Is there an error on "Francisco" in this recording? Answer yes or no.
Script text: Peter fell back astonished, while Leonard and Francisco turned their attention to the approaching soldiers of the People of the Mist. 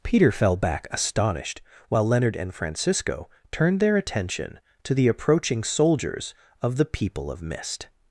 no